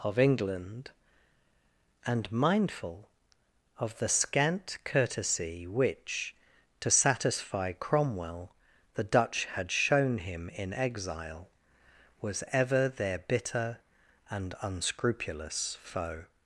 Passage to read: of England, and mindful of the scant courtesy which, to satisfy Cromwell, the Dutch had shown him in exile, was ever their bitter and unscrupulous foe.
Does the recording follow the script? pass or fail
pass